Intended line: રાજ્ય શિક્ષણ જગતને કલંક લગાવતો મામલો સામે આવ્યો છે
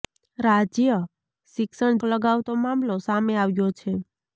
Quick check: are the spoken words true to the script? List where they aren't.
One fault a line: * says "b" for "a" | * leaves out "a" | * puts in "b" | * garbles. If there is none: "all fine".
* leaves out "જગતને કલંક"